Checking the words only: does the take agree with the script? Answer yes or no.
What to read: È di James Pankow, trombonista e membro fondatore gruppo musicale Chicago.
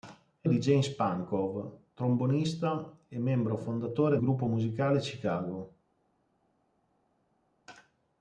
yes